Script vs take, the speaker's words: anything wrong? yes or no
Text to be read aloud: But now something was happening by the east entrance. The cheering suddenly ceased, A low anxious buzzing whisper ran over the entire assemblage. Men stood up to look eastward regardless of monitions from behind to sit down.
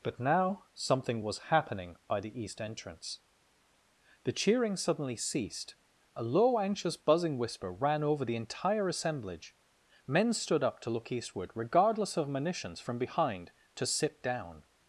no